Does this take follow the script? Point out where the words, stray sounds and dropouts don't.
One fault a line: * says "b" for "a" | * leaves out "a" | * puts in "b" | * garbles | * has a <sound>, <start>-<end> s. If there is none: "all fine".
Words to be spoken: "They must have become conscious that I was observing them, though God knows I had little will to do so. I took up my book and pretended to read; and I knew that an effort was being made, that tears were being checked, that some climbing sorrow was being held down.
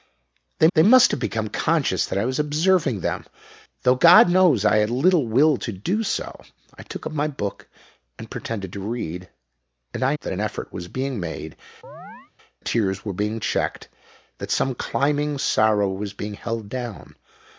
* puts in "they"
* leaves out "knew"
* leaves out "that"
* has a chirp, 11.8-12.3 s